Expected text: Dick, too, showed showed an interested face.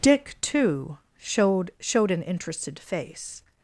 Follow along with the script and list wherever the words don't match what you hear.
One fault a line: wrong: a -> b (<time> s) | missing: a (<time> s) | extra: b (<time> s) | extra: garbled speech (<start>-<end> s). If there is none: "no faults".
no faults